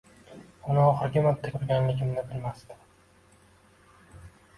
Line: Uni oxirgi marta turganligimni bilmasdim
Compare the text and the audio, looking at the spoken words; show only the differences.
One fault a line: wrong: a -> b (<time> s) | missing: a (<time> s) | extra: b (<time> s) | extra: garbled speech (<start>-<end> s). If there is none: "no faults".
no faults